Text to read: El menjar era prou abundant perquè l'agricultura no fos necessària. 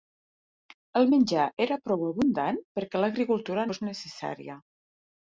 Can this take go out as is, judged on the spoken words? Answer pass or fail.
fail